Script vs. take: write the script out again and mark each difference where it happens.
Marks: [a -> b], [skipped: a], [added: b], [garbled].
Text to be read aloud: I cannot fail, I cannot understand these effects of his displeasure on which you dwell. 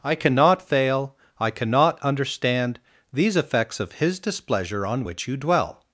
I cannot fail, I cannot understand these effects of his displeasure on which you dwell.